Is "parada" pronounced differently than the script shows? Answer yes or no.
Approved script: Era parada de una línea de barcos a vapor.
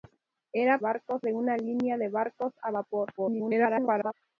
yes